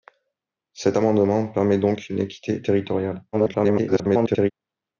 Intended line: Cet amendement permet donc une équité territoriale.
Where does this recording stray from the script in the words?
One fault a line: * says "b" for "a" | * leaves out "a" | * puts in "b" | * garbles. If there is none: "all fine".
* garbles